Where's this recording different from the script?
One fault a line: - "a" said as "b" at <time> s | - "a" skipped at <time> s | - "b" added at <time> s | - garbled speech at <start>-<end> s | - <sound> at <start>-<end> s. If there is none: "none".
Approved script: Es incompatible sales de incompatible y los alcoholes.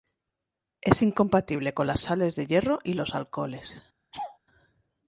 - "con las" added at 1.8 s
- "incompatible" said as "hierro" at 2.5 s
- laugh at 4.1-4.4 s